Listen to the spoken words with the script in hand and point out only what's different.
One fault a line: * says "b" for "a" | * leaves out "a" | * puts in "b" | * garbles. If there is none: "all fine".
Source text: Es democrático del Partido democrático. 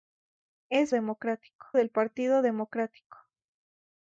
all fine